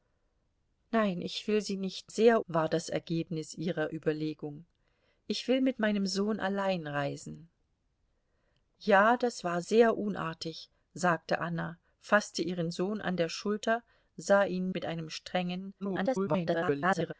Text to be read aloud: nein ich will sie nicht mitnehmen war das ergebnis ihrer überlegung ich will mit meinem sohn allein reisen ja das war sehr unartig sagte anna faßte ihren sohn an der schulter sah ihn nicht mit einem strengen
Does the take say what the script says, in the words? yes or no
no